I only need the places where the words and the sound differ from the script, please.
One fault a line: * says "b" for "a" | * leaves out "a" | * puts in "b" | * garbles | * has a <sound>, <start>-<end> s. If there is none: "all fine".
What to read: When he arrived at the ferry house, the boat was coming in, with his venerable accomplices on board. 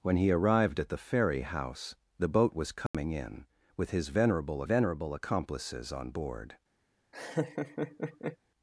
* has a dropout, 2.9-2.9 s
* puts in "venerable"
* has a laugh, 7.1-8.4 s